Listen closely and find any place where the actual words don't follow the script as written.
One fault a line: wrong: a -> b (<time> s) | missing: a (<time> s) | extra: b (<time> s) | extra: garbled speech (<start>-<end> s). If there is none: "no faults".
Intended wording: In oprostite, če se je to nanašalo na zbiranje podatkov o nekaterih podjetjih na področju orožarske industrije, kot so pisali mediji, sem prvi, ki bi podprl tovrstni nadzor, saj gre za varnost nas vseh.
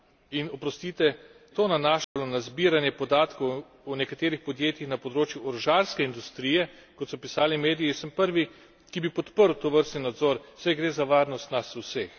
missing: če se je (1.1 s)